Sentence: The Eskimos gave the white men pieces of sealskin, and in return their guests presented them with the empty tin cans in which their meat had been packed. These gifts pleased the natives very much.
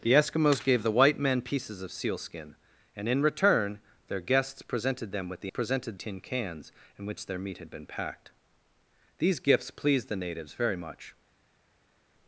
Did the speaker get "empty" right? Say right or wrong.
wrong